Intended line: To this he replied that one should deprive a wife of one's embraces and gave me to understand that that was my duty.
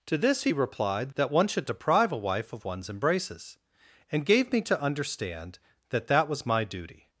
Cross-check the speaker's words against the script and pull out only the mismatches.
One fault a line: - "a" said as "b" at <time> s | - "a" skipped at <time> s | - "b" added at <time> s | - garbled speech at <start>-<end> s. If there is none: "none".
none